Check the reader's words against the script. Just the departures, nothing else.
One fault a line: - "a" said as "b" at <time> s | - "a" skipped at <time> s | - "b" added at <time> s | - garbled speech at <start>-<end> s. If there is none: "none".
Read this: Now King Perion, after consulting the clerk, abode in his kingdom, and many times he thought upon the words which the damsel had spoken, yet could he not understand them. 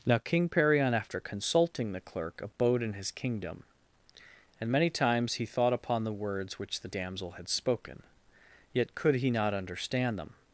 none